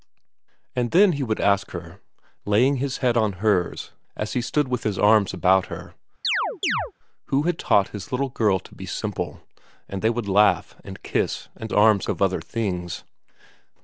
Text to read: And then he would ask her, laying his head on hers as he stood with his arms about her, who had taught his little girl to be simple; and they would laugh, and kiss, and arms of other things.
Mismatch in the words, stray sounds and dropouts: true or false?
true